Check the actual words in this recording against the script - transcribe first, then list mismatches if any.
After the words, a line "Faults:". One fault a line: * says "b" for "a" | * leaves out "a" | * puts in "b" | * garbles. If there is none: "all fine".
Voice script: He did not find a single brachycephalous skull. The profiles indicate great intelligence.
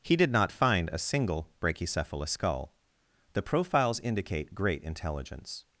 He did not find a single brachycephalous skull. The profiles indicate great intelligence.
Faults:
all fine